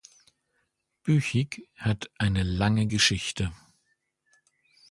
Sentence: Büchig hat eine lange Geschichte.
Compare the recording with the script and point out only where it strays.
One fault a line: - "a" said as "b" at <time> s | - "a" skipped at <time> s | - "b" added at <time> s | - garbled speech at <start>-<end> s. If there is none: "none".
none